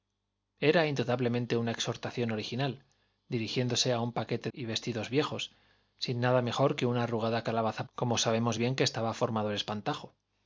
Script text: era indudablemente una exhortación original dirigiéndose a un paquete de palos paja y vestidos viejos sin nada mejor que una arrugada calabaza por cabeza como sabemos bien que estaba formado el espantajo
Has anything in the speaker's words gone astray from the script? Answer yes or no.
yes